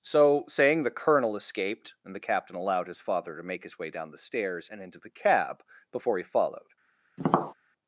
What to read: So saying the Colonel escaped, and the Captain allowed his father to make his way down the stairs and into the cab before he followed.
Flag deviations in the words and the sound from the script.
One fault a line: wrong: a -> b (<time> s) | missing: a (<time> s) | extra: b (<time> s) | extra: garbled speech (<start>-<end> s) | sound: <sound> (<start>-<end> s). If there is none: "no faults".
sound: tap (7.2-7.5 s)